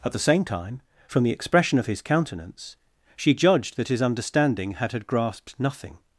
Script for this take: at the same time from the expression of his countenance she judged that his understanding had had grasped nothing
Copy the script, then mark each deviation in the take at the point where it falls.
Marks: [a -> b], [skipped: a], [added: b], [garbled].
at the same time from the expression of his countenance she judged that his understanding had had grasped nothing